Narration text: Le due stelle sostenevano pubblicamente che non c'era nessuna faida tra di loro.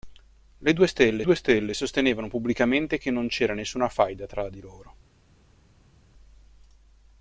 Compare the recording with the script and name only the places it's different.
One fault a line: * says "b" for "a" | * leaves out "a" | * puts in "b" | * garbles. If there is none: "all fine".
* puts in "due stelle"